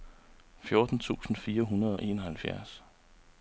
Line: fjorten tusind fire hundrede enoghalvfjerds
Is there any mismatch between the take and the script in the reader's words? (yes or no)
no